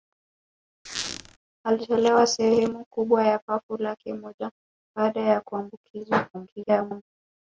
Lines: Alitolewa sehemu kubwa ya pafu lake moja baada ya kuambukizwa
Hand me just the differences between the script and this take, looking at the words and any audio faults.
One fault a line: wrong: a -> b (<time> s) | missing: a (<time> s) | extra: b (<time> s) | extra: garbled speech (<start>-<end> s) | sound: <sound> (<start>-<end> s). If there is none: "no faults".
sound: squeak (0.9-1.4 s)
extra: garbled speech (6.3-7.0 s)